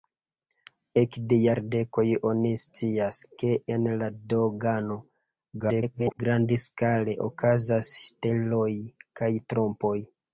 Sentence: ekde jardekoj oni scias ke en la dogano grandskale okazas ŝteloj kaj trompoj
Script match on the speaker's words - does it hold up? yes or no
no